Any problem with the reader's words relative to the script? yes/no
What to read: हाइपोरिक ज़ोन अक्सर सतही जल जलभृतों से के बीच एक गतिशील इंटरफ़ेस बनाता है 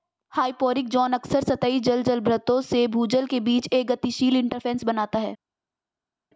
yes